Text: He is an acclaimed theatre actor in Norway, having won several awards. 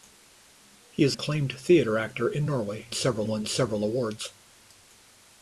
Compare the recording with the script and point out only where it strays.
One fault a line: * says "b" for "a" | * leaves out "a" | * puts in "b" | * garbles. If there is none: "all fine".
* leaves out "an"
* says "several" for "having"